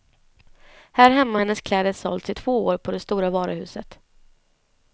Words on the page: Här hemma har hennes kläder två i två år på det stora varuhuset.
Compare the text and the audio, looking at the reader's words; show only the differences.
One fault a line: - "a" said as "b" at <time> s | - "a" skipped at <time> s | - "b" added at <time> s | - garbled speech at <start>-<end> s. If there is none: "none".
- "två" said as "sålts" at 1.9 s